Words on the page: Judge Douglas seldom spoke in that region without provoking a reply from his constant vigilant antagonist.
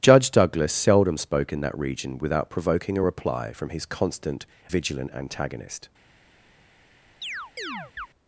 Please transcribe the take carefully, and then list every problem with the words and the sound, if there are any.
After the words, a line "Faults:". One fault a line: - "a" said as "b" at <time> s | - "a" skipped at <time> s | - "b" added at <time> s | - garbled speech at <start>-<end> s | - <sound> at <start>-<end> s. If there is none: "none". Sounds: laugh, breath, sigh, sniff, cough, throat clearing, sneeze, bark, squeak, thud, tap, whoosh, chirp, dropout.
Judge Douglas seldom spoke in that region without provoking a reply from his constant vigilant antagonist.
Faults:
- chirp at 7.2-8.1 s